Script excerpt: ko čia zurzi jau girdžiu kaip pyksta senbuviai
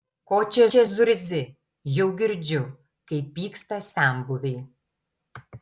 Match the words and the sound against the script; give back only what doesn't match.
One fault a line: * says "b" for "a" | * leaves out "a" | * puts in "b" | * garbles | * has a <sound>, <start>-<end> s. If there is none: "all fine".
* puts in "čia"